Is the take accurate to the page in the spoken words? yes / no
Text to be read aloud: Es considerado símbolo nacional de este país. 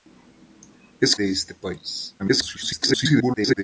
no